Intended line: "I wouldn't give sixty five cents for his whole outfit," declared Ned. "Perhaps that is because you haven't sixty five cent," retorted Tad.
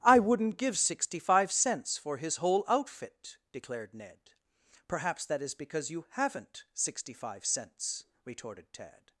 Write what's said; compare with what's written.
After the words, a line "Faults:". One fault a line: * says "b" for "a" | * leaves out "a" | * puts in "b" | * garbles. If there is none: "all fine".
"I wouldn't give sixty five cents for his whole outfit," declared Ned. "Perhaps that is because you haven't sixty five cents," retorted Tad.
Faults:
* says "cents" for "cent"